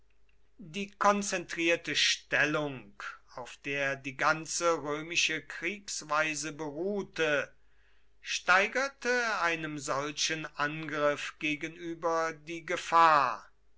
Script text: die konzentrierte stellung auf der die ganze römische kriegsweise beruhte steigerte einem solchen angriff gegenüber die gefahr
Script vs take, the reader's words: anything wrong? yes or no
no